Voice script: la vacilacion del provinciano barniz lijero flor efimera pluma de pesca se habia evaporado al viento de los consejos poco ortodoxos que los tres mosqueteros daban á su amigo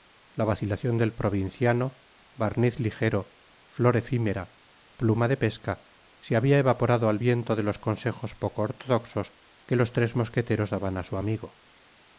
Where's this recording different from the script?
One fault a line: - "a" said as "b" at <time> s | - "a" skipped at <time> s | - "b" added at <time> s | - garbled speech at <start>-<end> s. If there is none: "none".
none